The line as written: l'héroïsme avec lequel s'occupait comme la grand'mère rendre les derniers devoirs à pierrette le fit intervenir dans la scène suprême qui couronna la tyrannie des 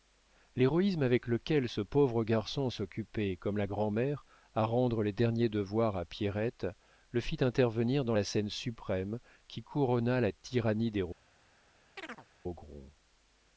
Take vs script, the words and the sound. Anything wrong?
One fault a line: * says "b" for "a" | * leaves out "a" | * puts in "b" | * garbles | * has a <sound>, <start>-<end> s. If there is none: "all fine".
* puts in "ce pauvre garçon"
* puts in "à"
* has a chirp, 12.0-12.3 s